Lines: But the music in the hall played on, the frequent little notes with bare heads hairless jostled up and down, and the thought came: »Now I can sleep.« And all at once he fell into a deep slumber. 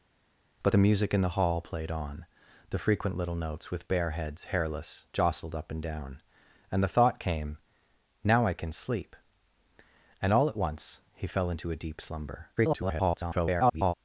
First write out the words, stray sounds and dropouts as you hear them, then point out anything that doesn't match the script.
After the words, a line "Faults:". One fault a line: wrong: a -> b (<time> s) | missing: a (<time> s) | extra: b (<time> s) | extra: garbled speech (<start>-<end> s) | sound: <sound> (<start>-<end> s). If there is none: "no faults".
But the music in the hall played on, the frequent little notes with bare heads hairless jostled up and down, and the thought came: »Now I can sleep.« And all at once he fell into a deep slumber. [garbled]
Faults:
extra: garbled speech (12.6-13.9 s)